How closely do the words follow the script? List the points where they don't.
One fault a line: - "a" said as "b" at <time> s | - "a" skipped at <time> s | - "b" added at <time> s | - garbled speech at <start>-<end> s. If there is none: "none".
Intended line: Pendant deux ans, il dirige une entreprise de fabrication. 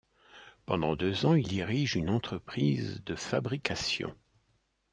none